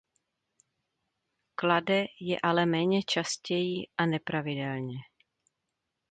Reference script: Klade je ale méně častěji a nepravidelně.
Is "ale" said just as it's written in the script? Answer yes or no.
yes